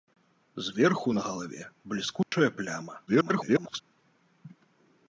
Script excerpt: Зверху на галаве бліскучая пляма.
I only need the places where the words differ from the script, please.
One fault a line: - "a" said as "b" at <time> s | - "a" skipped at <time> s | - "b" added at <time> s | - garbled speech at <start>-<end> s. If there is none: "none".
- garbled speech at 3.1-3.8 s